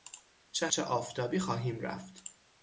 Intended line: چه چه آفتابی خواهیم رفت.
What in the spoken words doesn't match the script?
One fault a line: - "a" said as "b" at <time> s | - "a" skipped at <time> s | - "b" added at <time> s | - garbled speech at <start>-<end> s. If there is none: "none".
none